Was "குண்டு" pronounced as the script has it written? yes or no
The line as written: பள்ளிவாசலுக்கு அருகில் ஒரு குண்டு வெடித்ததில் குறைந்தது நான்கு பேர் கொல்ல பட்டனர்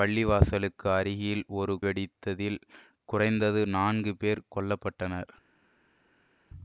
no